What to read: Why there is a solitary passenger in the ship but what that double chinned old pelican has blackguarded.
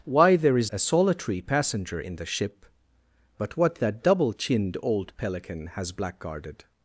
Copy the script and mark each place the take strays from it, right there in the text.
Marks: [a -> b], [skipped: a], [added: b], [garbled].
Why there is a solitary passenger in the ship but what that double chinned old pelican has blackguarded.